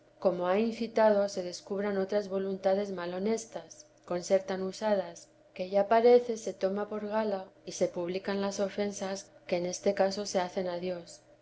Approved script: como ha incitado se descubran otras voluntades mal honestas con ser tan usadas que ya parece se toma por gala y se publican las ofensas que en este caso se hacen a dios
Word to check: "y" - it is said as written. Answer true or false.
true